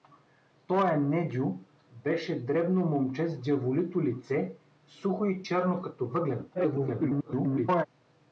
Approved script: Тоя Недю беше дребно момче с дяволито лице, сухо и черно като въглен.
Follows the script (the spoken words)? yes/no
no